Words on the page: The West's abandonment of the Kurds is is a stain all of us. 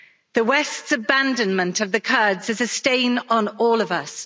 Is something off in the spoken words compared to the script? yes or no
yes